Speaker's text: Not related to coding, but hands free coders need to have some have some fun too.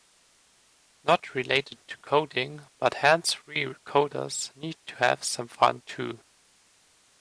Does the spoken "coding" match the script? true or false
true